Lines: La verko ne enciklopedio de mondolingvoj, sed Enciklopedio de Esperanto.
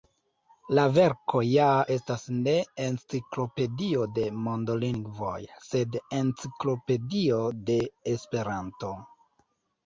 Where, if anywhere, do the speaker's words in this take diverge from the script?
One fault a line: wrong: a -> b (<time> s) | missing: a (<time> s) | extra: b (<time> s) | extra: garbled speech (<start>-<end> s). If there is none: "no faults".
extra: ja estas (1.5 s)